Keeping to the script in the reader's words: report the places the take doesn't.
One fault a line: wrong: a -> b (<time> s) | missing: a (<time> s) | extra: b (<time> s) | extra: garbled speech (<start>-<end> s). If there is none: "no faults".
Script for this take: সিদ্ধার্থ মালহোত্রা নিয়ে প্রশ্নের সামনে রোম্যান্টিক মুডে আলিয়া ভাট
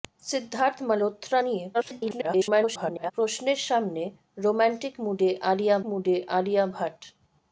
extra: garbled speech (1.7-3.1 s)
extra: মুডে আলিয়া (5.9 s)